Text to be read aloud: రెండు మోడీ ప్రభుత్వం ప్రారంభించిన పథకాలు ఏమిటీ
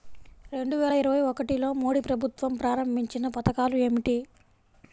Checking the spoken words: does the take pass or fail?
fail